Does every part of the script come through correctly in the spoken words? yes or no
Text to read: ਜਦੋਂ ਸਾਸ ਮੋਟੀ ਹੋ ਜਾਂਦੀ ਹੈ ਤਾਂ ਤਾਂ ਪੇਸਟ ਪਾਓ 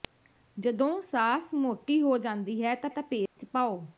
yes